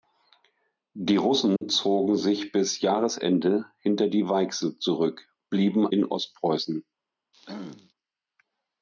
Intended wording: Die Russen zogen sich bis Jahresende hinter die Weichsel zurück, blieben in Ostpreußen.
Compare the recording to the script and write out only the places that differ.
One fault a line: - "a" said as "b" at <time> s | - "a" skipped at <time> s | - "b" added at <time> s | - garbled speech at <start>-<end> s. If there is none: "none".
none